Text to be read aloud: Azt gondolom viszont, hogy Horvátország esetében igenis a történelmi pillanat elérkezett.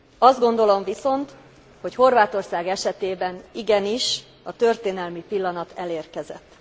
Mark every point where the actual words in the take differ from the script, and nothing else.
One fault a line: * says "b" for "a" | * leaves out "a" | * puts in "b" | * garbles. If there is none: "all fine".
all fine